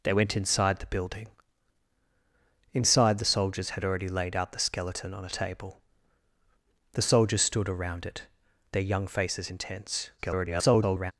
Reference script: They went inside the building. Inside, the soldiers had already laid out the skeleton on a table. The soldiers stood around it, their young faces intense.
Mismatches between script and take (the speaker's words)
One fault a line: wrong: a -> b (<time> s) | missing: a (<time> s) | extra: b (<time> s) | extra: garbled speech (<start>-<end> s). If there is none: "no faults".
extra: garbled speech (10.2-11.1 s)